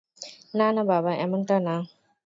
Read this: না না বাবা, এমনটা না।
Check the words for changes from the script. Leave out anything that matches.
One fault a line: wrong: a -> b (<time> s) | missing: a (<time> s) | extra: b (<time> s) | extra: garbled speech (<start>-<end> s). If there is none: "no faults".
no faults